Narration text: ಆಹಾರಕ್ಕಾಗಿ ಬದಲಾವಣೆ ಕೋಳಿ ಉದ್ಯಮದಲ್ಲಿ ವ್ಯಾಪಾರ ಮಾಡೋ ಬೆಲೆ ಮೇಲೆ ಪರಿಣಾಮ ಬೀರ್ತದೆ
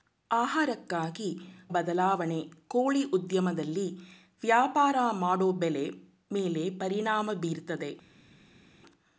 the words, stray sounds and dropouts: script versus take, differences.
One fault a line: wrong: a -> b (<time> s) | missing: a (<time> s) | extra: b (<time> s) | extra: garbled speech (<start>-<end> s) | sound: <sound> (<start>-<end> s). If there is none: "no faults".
no faults